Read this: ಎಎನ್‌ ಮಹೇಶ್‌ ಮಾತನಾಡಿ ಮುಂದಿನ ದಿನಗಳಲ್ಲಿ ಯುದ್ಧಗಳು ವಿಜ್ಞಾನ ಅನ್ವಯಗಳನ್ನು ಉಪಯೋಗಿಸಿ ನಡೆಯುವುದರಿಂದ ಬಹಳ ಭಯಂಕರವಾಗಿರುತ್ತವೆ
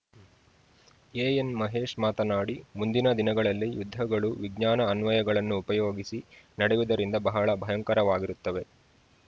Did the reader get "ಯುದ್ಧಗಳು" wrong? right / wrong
right